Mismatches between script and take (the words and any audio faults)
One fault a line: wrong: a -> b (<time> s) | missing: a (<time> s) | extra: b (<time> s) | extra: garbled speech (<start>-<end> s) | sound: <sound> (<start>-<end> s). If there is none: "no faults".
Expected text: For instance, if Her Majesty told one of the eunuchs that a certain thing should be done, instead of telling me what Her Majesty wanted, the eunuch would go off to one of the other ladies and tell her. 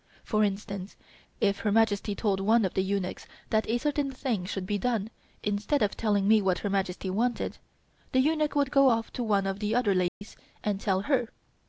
sound: dropout (10.1-10.2 s)